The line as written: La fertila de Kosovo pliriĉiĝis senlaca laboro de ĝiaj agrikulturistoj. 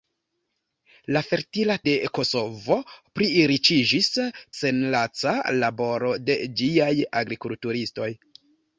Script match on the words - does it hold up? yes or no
yes